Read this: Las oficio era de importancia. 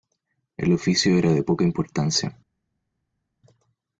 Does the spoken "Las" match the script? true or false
false